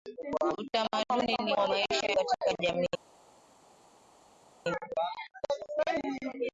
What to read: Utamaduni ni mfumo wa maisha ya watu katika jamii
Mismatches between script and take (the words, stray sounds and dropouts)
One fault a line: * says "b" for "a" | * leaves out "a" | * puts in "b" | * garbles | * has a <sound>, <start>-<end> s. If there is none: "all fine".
* leaves out "mfumo"
* leaves out "ya watu"